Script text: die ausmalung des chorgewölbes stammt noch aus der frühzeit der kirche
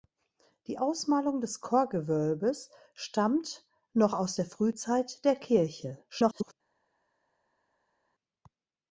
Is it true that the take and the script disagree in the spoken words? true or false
true